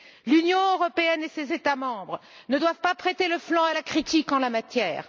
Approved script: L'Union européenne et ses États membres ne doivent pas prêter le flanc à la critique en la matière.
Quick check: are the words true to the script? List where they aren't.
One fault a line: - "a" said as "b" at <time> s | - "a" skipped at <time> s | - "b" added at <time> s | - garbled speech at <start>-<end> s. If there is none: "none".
none